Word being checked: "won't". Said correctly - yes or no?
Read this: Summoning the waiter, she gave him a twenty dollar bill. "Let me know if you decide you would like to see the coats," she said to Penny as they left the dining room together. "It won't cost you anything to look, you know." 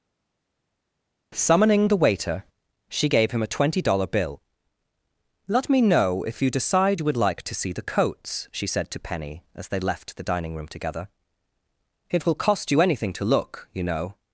no